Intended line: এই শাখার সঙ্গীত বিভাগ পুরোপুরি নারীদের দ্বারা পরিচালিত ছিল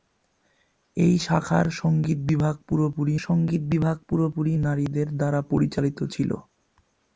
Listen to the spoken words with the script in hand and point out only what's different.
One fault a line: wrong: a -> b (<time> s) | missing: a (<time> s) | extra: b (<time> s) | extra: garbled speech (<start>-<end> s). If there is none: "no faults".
extra: সঙ্গীত বিভাগ পুরোপুরি (3.2 s)